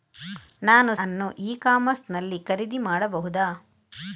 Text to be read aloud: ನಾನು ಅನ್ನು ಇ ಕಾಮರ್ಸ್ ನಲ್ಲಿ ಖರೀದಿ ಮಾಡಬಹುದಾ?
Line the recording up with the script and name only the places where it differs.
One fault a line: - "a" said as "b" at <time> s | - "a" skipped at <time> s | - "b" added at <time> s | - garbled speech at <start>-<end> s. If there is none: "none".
none